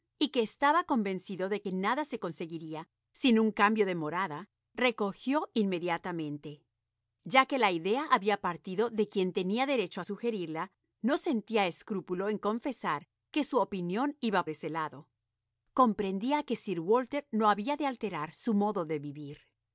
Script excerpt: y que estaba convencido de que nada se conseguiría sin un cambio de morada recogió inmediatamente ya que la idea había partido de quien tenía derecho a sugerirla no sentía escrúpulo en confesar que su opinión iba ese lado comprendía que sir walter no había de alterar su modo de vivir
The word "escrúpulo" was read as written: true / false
true